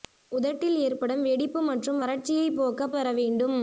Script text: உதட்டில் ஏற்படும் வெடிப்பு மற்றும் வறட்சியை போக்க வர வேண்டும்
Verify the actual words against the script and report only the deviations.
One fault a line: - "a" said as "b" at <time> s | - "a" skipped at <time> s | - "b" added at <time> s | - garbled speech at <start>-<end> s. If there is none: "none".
none